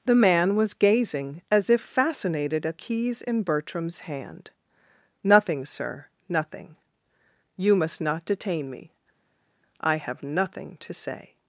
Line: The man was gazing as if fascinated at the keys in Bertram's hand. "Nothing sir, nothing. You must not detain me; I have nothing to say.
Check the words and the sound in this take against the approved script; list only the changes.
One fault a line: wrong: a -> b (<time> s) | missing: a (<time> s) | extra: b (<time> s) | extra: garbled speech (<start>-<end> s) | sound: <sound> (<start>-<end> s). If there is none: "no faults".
missing: the (2.8 s)